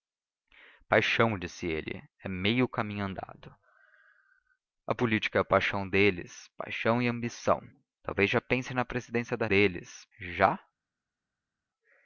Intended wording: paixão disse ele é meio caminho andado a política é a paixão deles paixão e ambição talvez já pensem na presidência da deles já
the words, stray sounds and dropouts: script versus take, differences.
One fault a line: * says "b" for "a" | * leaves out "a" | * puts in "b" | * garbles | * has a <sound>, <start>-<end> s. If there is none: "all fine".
all fine